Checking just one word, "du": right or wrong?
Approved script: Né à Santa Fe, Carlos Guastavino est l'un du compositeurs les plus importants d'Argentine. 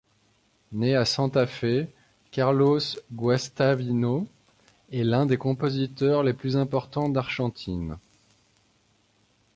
wrong